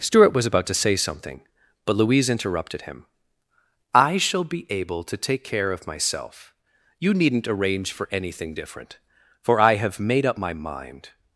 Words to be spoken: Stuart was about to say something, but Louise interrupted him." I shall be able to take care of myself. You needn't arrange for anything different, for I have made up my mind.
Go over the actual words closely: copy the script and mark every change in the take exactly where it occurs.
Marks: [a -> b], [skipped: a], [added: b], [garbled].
Stuart was about to say something, but Louise interrupted him." I shall be able to take care of myself. You needn't arrange for anything different, for I have made up my mind.